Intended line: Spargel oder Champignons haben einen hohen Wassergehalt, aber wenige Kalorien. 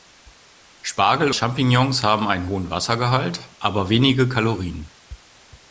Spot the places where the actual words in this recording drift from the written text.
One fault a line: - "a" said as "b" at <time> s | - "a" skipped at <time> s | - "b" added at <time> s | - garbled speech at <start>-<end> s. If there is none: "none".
- "oder" skipped at 1.3 s